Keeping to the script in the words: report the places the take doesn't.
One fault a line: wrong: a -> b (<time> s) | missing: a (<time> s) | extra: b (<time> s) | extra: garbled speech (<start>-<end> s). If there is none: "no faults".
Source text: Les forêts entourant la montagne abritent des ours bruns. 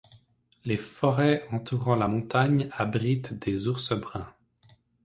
no faults